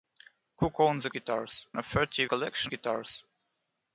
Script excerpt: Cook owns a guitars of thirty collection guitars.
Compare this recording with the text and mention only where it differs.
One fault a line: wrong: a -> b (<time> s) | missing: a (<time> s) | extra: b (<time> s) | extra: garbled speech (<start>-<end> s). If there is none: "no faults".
no faults